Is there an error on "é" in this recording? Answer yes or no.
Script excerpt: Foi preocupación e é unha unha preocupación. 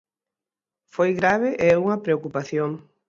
no